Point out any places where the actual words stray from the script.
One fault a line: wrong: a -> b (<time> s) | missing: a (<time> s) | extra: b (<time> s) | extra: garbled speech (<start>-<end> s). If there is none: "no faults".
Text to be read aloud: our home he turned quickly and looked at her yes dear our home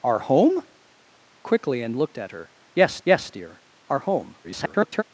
missing: he turned (0.7 s)
extra: yes (3.0 s)
extra: garbled speech (4.4-5.0 s)